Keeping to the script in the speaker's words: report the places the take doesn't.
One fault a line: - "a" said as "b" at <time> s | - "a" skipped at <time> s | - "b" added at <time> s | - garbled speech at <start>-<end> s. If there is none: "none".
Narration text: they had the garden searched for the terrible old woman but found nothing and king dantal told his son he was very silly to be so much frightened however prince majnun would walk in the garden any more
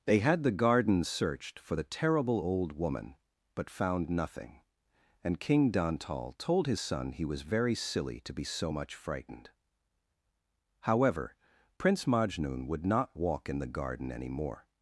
- "not" added at 12.9 s